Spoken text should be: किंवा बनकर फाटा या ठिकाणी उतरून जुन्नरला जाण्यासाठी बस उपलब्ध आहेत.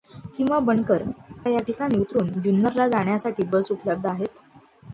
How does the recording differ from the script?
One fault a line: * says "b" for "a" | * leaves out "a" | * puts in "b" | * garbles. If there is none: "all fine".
* leaves out "फाटा"